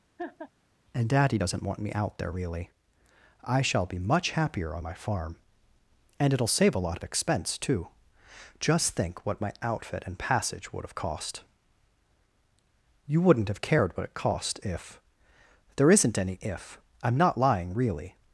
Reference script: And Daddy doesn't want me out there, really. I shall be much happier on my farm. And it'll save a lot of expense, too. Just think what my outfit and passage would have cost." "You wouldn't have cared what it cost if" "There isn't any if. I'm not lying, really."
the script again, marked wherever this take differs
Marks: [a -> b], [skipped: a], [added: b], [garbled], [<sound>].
[laugh] And Daddy doesn't want me out there, really. I shall be much happier on my farm. And it'll save a lot of expense, too. Just think what my outfit and passage would have cost." "You wouldn't have cared what it cost if" "There isn't any if. I'm not lying, really."